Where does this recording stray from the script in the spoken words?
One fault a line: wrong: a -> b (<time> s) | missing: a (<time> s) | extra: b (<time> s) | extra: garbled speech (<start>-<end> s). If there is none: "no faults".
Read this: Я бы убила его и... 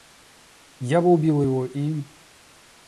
no faults